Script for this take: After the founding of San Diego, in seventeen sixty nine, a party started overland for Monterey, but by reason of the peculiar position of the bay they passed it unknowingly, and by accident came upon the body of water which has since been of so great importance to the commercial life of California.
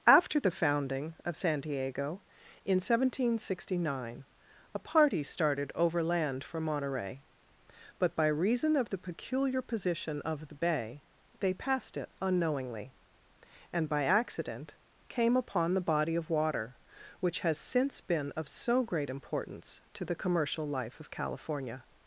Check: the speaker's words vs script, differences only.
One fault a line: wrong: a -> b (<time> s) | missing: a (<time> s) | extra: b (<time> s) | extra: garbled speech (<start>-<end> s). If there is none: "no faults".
no faults